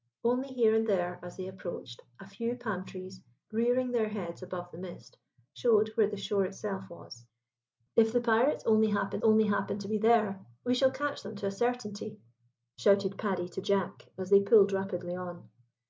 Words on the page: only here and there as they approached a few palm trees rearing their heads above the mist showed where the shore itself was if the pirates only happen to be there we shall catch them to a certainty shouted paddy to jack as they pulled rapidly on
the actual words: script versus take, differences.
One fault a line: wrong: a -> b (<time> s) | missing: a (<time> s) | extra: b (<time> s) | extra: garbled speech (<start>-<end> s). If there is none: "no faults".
extra: only happen (9.2 s)